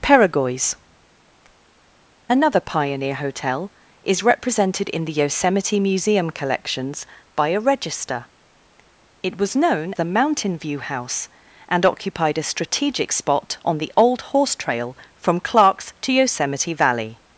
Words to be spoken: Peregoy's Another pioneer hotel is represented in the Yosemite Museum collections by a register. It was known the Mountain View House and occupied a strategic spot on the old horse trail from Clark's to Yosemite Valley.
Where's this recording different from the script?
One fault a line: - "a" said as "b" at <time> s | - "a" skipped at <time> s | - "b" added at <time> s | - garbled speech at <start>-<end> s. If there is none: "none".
none